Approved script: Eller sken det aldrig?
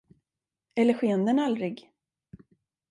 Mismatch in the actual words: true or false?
true